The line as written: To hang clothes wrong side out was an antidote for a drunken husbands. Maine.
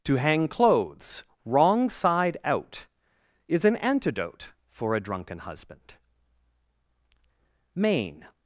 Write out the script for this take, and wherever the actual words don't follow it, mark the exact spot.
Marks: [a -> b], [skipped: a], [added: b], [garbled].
To hang clothes wrong side out [was -> is] an antidote for a drunken [husbands. -> husband] Maine.